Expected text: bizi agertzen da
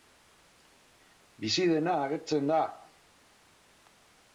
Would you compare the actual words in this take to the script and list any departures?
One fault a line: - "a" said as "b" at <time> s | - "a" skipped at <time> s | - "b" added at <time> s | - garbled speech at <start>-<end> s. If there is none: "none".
- "dena" added at 1.8 s